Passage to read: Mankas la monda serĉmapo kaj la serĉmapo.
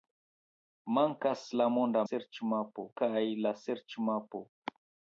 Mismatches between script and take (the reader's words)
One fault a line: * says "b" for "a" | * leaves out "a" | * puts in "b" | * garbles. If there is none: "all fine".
all fine